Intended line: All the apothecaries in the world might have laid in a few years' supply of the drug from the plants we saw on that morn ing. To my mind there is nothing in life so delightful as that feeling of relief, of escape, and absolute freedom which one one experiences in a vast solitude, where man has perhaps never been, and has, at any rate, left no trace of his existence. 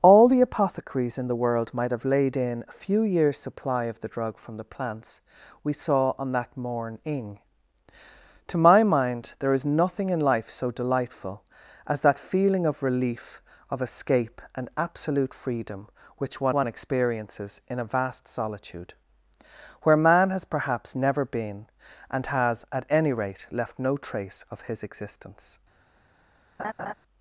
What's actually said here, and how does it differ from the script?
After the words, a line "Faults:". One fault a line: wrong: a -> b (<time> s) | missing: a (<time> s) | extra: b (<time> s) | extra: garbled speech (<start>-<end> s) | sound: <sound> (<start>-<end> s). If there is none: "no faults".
All the apothecaries in the world might have laid in a few years' supply of the drug from the plants we saw on that morn ing. To my mind there is nothing in life so delightful as that feeling of relief, of escape, and absolute freedom which one one experiences in a vast solitude, where man has perhaps never been, and has, at any rate, left no trace of his existence.
Faults:
sound: laugh (26.6-26.9 s)